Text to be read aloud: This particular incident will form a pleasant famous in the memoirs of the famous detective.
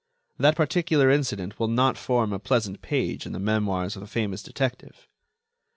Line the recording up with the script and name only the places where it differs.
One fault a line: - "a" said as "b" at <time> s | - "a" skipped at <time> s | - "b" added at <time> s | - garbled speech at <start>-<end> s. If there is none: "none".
- "This" said as "That" at 0.4 s
- "not" added at 1.7 s
- "famous" said as "page" at 2.8 s